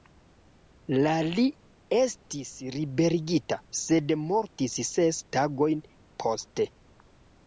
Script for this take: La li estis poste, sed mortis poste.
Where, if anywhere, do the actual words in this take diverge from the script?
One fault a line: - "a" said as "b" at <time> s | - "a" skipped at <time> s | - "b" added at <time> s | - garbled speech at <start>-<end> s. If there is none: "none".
- "poste" said as "liberigita" at 2.8 s
- "ses tagojn" added at 4.9 s